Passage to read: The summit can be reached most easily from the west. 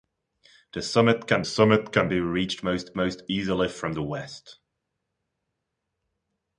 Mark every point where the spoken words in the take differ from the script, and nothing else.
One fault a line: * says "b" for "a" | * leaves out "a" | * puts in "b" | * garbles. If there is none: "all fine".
* puts in "summit can"
* puts in "most"